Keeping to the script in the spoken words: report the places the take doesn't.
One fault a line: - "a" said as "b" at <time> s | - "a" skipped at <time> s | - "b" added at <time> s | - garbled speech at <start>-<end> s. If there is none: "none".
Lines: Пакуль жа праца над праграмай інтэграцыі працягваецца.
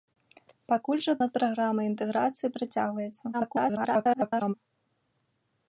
- "праца" skipped at 1.1 s
- garbled speech at 3.3-4.5 s